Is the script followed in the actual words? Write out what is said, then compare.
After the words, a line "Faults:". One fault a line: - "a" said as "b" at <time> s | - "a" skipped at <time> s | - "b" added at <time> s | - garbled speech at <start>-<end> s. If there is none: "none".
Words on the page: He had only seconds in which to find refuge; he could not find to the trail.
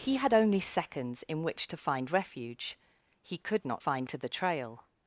He had only seconds in which to find refuge; he could not find to the trail.
Faults:
none